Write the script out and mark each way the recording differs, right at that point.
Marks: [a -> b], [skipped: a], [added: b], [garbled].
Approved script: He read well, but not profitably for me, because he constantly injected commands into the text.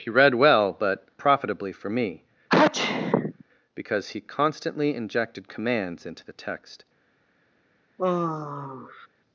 He read well, but [skipped: not] profitably for me, because he constantly injected commands into the text.